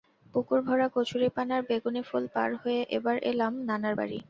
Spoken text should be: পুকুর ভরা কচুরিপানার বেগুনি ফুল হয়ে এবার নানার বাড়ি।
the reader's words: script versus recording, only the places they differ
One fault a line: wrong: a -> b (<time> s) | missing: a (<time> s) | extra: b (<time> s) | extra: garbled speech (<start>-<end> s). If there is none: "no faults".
extra: পার (2.4 s)
extra: এলাম (3.3 s)